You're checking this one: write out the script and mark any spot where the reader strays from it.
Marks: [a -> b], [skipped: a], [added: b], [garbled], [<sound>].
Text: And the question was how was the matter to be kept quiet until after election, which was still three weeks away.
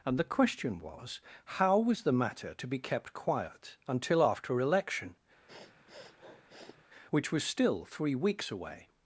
And the question was how was the matter to be kept quiet until after election, [sniff] which was still three weeks away.